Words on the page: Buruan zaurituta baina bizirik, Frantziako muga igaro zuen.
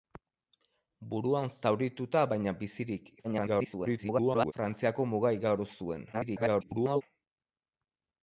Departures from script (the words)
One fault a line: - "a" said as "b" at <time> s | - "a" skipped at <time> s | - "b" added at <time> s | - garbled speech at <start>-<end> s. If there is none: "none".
- garbled speech at 3.2-4.5 s
- garbled speech at 6.1-7.0 s